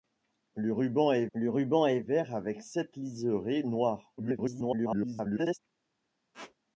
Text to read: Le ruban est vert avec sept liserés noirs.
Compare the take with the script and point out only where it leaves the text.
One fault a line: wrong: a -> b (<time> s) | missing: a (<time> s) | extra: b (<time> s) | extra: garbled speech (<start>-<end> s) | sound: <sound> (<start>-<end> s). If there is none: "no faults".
extra: le ruban est (1.3 s)
extra: garbled speech (4.2-5.6 s)
sound: squeak (6.3-6.5 s)